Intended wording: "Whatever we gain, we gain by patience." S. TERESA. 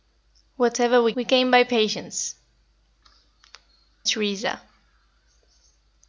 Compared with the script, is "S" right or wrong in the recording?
wrong